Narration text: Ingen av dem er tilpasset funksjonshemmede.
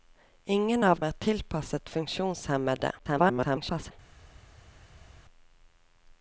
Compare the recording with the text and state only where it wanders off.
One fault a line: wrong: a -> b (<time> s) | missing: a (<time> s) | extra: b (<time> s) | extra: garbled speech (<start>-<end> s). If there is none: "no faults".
missing: dem (1.0 s)
extra: garbled speech (3.0-3.9 s)